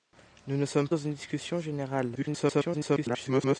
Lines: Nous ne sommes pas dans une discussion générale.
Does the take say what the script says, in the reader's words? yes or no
no